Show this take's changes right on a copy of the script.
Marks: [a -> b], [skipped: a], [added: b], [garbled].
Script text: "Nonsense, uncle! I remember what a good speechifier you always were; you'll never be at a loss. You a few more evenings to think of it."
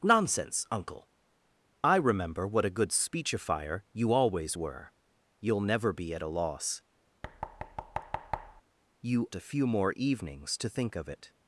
"Nonsense, uncle! I remember what a good speechifier you always were; you'll never be at a loss. You a few more evenings to think of it."